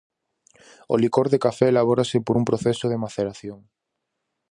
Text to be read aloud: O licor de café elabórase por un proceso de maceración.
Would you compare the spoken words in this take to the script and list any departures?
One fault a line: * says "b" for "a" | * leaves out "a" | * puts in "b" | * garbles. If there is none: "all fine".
all fine